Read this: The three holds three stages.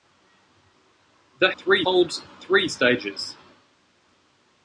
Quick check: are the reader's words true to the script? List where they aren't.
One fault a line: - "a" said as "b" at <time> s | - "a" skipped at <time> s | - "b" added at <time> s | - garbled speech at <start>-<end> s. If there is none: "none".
none